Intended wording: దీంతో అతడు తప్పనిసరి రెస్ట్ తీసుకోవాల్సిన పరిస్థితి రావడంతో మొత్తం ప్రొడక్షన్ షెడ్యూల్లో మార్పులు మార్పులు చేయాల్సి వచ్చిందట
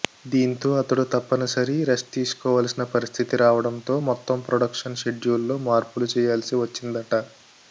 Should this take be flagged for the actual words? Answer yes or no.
yes